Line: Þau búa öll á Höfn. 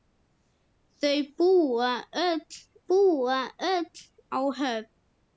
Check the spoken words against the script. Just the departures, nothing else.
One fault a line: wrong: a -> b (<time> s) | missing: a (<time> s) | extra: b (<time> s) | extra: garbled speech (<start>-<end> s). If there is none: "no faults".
extra: búa öll (2.9 s)